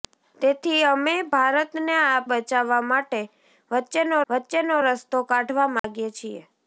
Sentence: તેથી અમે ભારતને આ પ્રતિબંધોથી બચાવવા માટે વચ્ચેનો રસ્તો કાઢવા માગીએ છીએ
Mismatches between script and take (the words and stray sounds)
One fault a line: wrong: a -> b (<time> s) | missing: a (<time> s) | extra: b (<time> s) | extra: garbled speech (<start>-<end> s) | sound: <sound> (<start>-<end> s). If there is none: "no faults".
missing: પ્રતિબંધોથી (2.2 s)
extra: વચ્ચેનો (4.3 s)
sound: dropout (5.8-5.8 s)